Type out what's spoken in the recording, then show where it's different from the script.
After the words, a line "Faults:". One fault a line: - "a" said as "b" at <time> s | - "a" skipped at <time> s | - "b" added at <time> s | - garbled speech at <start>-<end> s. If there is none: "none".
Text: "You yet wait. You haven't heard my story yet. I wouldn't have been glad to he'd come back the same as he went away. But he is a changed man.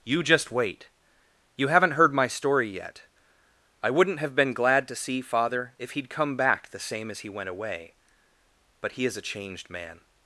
"You just wait. You haven't heard my story yet. I wouldn't have been glad to see father if he'd come back the same as he went away. But he is a changed man.
Faults:
- "yet" said as "just" at 0.2 s
- "see father if" added at 5.0 s